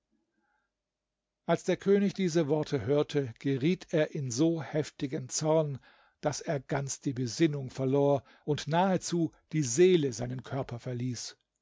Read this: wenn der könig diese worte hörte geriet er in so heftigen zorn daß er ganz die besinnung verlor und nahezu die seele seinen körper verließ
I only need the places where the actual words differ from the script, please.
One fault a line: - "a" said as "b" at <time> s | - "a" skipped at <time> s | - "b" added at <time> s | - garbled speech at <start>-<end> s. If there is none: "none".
- "wenn" said as "als" at 1.4 s